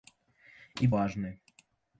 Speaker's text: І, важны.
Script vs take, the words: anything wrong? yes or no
no